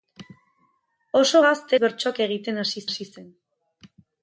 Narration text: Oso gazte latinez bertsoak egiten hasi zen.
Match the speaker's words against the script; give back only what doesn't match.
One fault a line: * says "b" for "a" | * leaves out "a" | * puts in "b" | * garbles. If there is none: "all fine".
* leaves out "latinez"
* puts in "hasi"